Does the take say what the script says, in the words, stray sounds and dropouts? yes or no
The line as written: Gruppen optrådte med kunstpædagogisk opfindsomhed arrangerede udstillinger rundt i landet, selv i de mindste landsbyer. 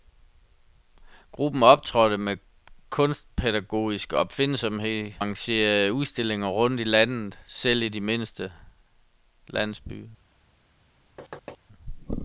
no